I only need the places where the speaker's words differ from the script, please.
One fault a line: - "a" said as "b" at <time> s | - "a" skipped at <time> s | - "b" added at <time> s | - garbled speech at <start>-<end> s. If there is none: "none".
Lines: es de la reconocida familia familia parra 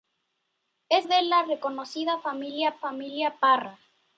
none